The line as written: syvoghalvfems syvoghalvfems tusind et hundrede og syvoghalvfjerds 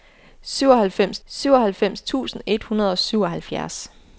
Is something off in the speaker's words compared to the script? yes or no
no